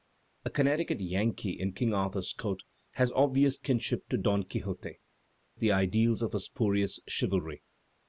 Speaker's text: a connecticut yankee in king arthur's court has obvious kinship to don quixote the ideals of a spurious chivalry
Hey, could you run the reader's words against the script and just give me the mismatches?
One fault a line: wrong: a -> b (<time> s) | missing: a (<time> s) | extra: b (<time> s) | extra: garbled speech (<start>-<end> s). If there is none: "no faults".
no faults